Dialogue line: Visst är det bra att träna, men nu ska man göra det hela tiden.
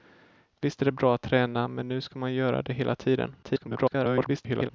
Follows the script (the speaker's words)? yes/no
no